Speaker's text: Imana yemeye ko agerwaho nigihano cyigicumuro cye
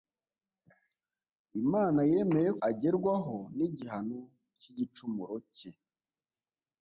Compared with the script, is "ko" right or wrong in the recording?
wrong